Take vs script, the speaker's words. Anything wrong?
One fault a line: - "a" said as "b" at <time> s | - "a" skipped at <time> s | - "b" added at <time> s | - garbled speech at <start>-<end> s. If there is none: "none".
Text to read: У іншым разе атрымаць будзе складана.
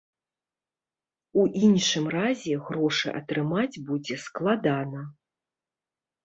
- "грошы" added at 2.7 s